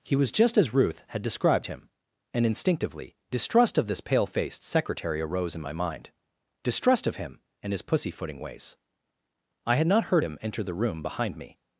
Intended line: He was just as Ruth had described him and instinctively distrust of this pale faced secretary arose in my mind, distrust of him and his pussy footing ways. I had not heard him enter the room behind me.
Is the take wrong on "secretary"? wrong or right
right